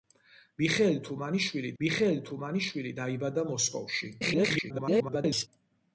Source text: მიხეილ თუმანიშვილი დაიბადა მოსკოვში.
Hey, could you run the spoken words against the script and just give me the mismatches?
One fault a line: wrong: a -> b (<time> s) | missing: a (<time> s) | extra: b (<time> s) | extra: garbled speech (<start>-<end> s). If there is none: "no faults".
extra: მიხეილ თუმანიშვილი (1.8 s)
extra: garbled speech (4.2-5.5 s)